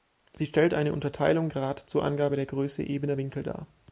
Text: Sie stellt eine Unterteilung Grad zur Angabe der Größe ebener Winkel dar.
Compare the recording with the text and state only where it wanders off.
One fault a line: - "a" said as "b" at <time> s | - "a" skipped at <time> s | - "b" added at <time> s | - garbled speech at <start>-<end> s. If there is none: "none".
none